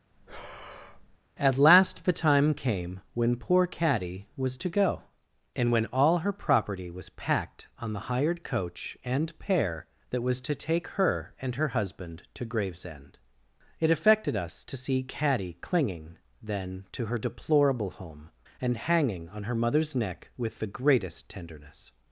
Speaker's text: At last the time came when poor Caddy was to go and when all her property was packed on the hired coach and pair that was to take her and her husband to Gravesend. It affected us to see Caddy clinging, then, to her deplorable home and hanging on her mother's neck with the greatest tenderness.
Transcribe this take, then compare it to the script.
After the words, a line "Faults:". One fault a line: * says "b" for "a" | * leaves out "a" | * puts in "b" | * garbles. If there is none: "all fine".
At last the time came when poor Caddy was to go and when all her property was packed on the hired coach and pair that was to take her and her husband to Gravesend. It affected us to see Caddy clinging, then, to her deplorable home and hanging on her mother's neck with the greatest tenderness.
Faults:
all fine